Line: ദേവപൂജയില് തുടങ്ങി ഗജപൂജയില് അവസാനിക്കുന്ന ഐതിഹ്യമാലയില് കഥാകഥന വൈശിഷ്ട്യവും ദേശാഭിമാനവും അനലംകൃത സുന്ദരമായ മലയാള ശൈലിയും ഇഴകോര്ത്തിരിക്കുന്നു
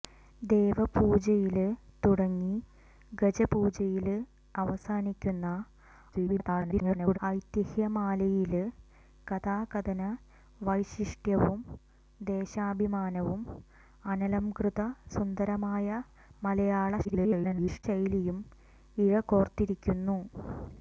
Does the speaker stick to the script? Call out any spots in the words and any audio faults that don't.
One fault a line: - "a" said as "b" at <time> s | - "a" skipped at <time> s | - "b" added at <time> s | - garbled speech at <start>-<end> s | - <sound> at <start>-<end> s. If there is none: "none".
- garbled speech at 6.1-7.2 s
- garbled speech at 17.0-17.8 s